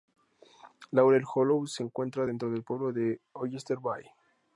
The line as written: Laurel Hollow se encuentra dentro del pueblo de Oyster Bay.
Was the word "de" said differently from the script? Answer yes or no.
no